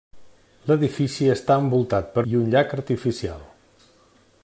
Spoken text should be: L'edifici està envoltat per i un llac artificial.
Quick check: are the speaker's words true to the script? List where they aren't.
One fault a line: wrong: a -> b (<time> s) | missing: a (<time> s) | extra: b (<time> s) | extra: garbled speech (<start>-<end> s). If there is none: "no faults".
no faults